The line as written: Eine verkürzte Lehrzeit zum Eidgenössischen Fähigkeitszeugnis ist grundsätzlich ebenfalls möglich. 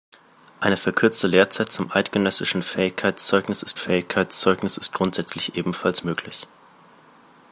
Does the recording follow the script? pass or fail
fail